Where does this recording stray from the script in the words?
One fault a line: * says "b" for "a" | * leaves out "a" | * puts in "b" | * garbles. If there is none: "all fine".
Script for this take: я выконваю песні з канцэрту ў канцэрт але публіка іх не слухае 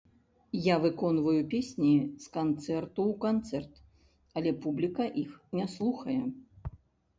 all fine